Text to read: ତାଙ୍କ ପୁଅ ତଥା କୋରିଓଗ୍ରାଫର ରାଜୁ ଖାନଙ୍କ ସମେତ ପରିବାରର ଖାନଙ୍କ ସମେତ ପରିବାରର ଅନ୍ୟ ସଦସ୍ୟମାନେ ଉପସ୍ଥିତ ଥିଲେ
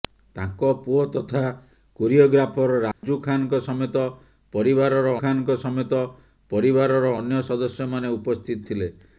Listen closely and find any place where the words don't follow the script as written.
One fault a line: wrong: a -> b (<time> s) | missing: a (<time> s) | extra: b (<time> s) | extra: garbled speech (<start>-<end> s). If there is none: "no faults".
no faults